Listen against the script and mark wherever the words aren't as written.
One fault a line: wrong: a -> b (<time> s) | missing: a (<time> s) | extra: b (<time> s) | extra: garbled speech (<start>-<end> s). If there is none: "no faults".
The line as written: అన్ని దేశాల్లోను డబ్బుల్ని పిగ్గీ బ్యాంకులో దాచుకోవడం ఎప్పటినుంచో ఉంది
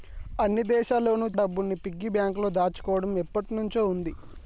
no faults